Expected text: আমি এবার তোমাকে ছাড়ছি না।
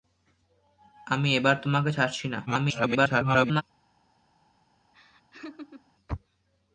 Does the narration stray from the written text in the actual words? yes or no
yes